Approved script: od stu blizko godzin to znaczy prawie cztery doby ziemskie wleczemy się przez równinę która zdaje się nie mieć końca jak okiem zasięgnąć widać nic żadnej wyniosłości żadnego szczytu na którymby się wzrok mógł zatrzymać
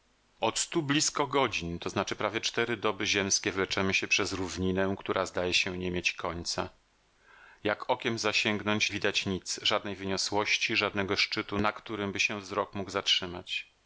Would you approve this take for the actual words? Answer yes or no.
yes